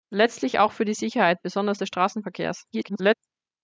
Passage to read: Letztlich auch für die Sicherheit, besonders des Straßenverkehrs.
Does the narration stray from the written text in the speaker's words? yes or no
yes